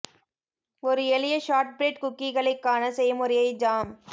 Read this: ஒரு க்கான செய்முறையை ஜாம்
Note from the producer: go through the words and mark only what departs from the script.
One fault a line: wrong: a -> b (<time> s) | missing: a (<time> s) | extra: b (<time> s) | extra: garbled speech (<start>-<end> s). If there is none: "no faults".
extra: எளிய ஷார்ட்பிரெட் குக்கீகளை (1.1 s)